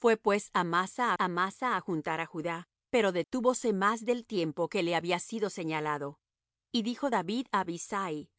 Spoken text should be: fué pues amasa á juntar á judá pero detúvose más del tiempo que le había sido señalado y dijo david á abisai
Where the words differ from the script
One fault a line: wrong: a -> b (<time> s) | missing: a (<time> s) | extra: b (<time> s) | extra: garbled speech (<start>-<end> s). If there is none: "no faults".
extra: amasa (1.2 s)